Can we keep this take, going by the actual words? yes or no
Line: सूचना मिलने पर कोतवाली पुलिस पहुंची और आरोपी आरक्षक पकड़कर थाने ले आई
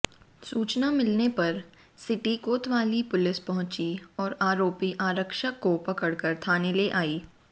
no